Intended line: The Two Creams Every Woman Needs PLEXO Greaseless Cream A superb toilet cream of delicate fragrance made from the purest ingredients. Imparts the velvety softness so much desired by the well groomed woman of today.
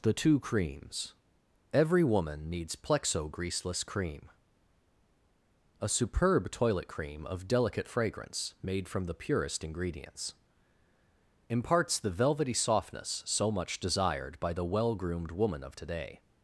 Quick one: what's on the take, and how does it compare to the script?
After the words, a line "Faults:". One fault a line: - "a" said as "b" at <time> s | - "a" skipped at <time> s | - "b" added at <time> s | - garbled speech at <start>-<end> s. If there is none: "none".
The Two Creams Every Woman Needs PLEXO Greaseless Cream A superb toilet cream of delicate fragrance made from the purest ingredients. Imparts the velvety softness so much desired by the well groomed woman of today.
Faults:
none